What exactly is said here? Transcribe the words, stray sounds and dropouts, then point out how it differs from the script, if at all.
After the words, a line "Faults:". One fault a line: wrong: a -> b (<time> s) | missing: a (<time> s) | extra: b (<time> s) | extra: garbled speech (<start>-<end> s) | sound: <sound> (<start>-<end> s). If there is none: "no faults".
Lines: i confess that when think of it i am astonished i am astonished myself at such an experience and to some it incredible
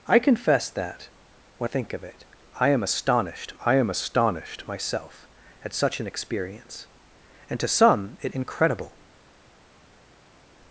i confess that when think of it i am astonished i am astonished myself at such an experience and to some it incredible
Faults:
no faults